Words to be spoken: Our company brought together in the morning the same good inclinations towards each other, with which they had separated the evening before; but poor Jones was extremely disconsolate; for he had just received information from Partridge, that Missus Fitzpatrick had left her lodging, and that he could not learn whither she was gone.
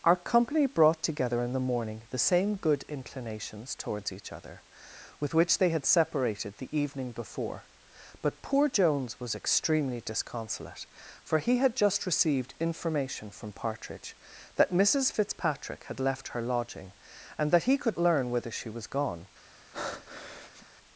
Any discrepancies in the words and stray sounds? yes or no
yes